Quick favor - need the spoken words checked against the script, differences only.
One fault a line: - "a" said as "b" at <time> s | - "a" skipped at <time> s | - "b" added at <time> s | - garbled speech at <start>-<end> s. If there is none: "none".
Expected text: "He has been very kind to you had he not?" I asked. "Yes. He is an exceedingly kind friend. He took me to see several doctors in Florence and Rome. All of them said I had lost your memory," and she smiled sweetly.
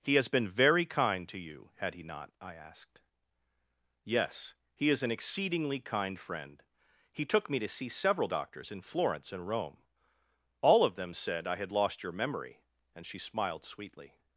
none